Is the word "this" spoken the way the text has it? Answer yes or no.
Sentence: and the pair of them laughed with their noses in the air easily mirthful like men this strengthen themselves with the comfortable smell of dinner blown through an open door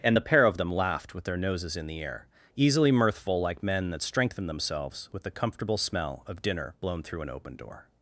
no